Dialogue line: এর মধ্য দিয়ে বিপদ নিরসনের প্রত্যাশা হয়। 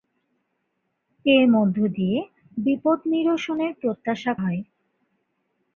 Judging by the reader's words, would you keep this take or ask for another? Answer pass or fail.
pass